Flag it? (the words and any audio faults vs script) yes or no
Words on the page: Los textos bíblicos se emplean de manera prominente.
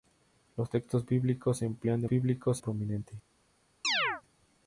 yes